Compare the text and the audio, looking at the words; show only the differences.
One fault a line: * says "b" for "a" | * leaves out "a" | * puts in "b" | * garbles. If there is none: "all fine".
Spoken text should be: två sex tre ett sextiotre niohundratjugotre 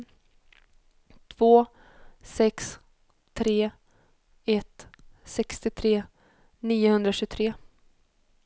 all fine